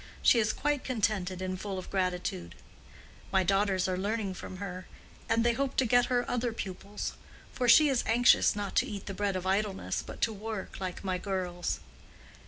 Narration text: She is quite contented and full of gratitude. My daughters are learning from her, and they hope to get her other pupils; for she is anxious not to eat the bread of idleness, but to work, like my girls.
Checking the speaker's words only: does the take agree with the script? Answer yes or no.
yes